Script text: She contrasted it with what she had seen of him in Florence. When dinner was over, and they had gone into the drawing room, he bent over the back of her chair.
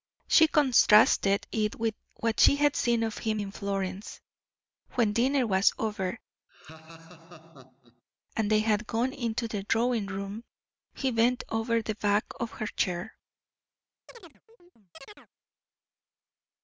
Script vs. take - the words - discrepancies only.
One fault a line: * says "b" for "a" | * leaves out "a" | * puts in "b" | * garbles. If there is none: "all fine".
all fine